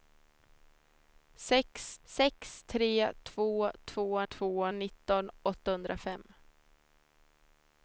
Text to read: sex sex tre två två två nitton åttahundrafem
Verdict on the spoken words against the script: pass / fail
pass